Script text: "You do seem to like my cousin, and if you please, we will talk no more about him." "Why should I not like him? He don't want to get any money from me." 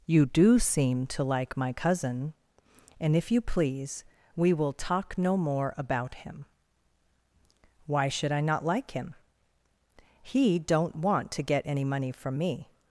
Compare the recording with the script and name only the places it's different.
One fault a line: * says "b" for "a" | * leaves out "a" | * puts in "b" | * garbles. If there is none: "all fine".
all fine